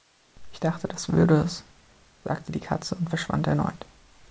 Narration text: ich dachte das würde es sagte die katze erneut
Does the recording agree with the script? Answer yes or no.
no